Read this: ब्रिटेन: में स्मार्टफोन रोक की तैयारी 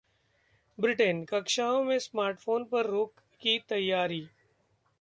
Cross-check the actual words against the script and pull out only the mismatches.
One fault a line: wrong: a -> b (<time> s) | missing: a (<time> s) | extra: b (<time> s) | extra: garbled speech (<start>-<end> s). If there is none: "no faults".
extra: कक्षाओं (1.2 s)
extra: पर (2.6 s)